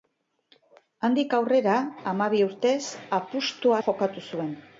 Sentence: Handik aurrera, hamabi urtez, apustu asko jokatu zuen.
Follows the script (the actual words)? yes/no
no